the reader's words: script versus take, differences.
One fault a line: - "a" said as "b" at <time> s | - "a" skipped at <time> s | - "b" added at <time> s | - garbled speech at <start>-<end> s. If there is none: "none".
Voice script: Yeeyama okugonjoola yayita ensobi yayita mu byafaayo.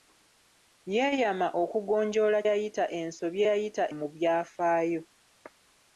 none